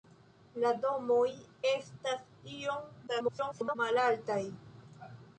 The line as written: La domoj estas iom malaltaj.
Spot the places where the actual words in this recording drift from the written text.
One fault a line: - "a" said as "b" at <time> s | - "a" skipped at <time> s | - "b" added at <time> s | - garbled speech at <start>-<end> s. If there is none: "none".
- garbled speech at 3.1-3.8 s